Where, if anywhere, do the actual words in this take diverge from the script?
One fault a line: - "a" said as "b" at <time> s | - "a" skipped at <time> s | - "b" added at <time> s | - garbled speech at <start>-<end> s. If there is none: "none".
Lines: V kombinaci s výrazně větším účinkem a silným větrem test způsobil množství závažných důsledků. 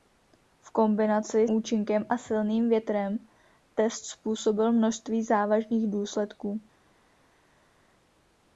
- "s výrazně větším" skipped at 1.5 s